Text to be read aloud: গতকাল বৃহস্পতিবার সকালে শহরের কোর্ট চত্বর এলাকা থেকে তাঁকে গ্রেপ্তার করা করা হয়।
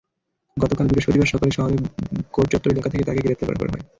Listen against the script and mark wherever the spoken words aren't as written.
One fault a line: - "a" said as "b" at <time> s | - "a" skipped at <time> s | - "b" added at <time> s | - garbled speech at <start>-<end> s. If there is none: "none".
none